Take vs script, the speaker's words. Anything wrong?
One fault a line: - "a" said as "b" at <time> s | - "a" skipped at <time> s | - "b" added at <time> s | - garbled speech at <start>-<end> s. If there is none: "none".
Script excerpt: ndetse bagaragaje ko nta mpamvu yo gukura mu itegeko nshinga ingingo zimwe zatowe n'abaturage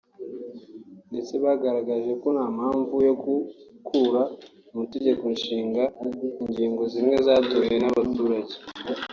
none